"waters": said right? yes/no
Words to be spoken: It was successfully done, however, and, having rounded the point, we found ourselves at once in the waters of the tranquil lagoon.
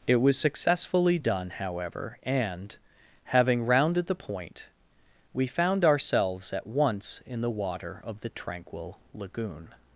no